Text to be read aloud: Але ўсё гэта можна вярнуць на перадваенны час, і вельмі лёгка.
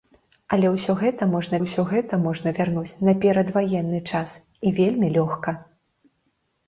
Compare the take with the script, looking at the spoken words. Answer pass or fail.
fail